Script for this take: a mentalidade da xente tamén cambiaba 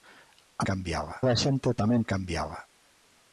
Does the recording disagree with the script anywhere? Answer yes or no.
yes